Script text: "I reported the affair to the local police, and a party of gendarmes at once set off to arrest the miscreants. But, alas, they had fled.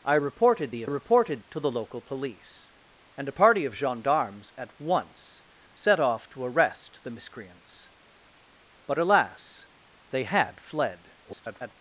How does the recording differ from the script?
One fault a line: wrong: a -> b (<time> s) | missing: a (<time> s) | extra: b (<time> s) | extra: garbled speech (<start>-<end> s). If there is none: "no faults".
wrong: affair -> reported (0.8 s)
extra: garbled speech (11.2-11.7 s)